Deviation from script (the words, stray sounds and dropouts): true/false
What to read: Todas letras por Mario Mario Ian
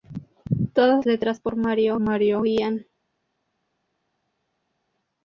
false